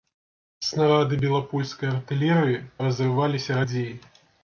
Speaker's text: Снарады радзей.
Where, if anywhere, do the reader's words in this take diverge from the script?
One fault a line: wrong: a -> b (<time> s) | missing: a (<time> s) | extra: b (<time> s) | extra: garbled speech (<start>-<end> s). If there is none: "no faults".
extra: белапольскай артылерыі разрываліся (1.2 s)